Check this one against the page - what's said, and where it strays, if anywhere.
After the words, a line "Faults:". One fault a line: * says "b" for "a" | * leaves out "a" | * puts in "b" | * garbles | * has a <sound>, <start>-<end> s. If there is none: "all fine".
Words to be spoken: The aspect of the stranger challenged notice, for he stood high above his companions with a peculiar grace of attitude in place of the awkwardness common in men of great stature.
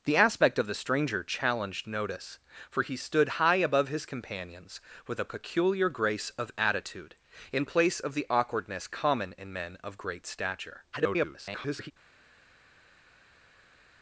The aspect of the stranger challenged notice, for he stood high above his companions with a peculiar grace of attitude in place of the awkwardness common in men of great stature. [garbled]
Faults:
* garbles